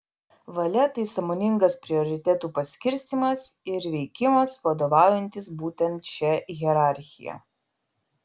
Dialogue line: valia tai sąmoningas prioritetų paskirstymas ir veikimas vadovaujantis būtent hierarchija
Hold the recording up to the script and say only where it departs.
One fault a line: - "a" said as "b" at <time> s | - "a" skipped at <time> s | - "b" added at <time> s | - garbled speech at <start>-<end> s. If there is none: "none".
- "šia" added at 6.1 s